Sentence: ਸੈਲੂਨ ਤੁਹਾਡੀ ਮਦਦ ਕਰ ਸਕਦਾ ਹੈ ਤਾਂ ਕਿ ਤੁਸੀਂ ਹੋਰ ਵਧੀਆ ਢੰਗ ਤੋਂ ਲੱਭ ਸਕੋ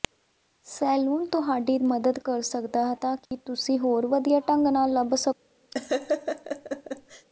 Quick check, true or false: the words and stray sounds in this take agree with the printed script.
false